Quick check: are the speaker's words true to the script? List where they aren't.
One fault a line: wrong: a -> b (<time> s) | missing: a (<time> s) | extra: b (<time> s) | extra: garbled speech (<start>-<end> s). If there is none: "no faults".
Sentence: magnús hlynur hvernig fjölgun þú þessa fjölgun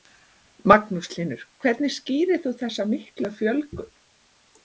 wrong: fjölgun -> skýrir (2.0 s)
extra: miklu (3.0 s)